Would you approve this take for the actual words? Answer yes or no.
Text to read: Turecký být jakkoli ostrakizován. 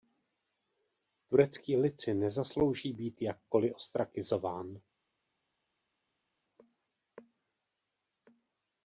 no